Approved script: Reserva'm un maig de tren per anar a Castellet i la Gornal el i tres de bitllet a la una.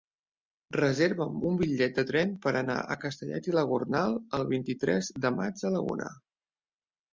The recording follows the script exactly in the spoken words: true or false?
false